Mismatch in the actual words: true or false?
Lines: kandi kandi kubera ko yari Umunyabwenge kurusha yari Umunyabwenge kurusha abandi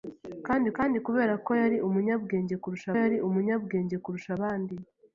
false